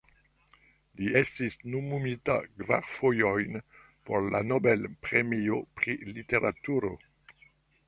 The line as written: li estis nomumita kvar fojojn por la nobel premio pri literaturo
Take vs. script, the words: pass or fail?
pass